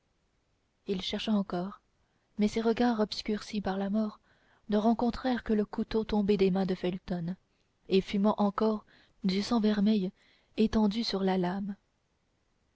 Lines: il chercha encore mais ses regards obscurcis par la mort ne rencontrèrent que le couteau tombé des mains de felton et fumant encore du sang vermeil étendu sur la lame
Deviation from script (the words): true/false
false